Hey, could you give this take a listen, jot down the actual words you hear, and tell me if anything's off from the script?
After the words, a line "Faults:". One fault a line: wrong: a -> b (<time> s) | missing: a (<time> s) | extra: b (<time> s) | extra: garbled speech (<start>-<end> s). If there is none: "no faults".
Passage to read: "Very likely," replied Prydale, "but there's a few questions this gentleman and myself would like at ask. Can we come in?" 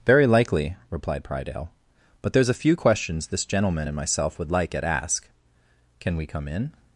"Very likely," replied Prydale, "but there's a few questions this gentleman and myself would like at ask. Can we come in?"
Faults:
no faults